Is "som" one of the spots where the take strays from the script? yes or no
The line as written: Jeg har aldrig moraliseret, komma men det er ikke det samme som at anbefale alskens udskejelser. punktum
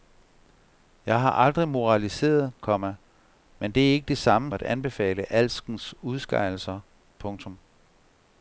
yes